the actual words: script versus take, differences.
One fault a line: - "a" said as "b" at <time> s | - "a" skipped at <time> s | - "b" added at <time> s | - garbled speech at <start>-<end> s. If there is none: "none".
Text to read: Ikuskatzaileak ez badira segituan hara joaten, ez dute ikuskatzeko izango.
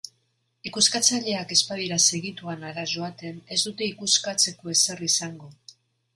- "ezer" added at 4.8 s